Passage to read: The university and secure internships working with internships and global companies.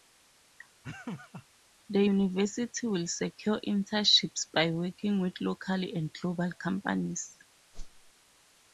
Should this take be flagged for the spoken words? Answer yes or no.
yes